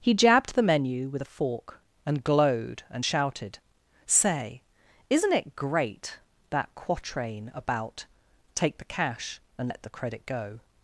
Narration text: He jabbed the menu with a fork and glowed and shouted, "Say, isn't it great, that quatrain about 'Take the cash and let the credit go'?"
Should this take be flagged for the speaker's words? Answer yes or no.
no